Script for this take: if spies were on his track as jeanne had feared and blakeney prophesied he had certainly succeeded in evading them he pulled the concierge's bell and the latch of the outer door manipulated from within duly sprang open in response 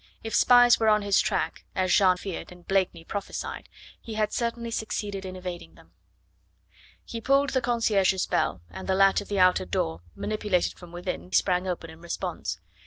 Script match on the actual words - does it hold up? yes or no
no